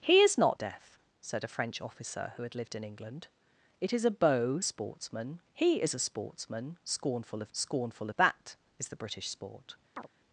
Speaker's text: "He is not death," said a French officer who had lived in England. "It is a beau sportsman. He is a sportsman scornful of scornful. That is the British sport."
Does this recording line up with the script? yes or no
yes